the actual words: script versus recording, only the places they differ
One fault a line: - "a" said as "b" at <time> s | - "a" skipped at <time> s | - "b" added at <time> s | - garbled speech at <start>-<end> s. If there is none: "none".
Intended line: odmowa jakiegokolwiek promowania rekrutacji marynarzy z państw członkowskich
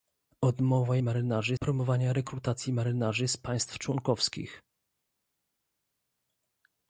- "jakiegokolwiek" said as "marynarzy" at 1.0 s